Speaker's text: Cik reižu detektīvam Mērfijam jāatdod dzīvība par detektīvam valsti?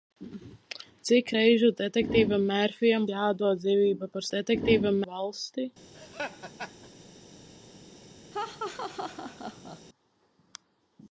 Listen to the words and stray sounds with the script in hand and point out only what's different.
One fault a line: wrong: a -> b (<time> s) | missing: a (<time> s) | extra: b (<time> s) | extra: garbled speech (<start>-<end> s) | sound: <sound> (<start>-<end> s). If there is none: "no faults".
sound: laugh (5.9-6.9 s)
sound: laugh (8.3-9.8 s)